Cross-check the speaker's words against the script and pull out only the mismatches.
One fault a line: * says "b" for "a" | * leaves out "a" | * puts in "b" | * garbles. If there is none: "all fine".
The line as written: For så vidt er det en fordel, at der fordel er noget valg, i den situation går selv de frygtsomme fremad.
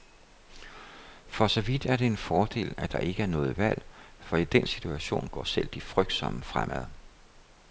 * says "ikke" for "fordel"
* puts in "for"